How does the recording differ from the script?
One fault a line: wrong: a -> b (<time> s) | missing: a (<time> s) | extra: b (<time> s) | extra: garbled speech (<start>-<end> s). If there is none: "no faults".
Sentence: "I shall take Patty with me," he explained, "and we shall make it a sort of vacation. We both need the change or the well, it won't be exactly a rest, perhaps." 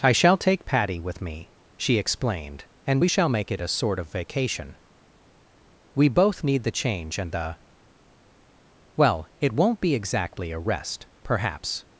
wrong: he -> she (1.8 s)
wrong: or -> and (7.2 s)